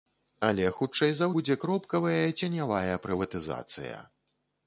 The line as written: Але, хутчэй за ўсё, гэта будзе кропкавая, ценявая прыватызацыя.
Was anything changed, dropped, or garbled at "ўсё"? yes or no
yes